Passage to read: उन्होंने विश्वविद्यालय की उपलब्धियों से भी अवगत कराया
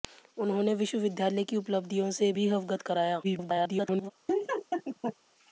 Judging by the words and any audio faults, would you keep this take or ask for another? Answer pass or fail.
fail